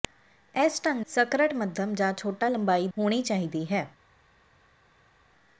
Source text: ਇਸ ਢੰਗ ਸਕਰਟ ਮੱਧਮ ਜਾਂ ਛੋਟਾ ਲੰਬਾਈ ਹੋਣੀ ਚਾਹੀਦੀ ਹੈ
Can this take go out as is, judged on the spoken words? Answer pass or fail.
pass